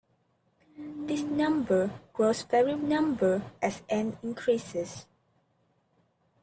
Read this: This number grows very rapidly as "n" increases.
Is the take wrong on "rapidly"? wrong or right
wrong